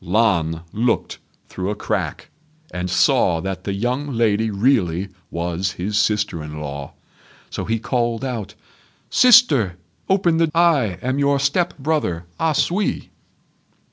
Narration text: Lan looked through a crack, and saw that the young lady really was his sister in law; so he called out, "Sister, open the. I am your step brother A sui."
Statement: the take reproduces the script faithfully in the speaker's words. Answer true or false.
true